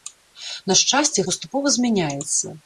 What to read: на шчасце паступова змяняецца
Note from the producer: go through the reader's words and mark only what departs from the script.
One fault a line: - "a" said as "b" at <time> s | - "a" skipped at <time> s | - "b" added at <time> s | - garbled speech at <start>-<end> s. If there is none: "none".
none